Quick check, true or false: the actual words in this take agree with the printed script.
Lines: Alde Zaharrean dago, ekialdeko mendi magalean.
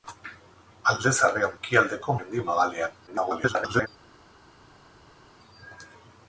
false